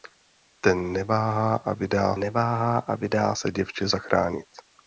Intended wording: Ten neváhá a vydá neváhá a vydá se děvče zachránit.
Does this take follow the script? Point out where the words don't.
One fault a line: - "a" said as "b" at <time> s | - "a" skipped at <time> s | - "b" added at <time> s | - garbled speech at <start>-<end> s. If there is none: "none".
none